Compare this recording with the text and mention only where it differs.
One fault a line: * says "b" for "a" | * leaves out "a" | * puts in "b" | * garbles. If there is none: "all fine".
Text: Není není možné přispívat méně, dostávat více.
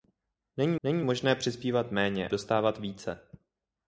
all fine